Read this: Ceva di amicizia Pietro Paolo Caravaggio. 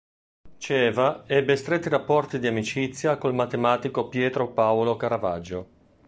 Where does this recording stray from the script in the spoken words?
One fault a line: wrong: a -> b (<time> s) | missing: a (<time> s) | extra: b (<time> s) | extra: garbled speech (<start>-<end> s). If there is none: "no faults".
extra: ebbe stretti rapporti (1.3 s)
extra: col matematico (3.2 s)